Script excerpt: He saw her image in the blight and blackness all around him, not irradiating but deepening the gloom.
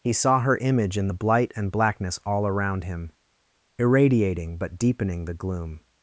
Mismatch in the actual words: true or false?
true